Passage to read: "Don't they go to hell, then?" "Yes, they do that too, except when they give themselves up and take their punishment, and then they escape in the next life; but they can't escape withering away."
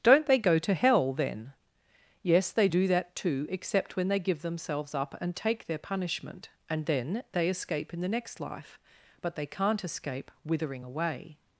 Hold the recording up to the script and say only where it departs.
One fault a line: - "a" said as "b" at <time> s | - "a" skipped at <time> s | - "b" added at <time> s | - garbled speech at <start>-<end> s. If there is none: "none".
none